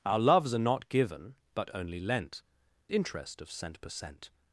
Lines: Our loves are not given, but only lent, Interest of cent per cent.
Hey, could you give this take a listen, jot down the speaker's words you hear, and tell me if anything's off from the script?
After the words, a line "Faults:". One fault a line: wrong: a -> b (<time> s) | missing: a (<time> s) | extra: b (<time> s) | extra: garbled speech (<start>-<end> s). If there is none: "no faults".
Our loves are not given, but only lent, Interest of cent per cent.
Faults:
no faults